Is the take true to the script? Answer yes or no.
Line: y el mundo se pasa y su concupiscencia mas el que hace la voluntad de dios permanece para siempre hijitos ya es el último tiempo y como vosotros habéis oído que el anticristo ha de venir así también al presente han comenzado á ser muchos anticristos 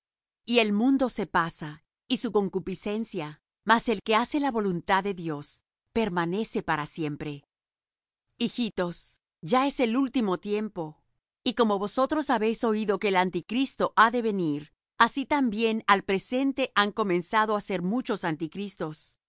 yes